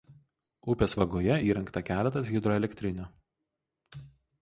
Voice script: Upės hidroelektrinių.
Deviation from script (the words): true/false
true